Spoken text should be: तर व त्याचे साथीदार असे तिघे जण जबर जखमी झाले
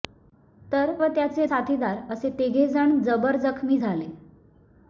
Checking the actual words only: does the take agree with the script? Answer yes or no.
yes